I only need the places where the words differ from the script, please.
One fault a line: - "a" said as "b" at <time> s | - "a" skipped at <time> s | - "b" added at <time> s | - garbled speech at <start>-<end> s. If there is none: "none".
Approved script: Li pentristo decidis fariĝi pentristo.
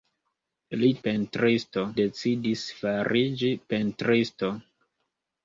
none